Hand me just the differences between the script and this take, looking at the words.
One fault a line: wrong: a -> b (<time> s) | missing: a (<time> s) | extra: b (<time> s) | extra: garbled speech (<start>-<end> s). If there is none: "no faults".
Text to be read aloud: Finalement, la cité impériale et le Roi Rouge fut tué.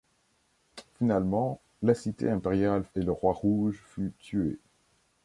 no faults